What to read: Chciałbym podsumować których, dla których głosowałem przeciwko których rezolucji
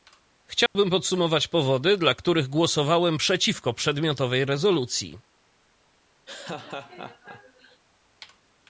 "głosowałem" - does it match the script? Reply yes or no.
yes